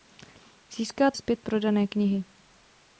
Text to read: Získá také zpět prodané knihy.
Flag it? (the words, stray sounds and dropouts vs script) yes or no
yes